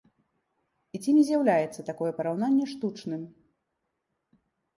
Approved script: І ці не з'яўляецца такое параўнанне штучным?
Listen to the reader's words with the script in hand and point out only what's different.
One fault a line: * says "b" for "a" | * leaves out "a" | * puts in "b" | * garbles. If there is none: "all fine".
all fine